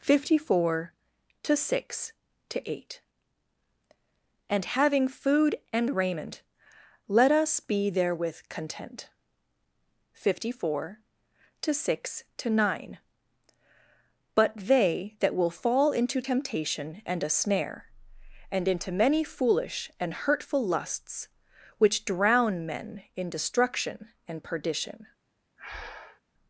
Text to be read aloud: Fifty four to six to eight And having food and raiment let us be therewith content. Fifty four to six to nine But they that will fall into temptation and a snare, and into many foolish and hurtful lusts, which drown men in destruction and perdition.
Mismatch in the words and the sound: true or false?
true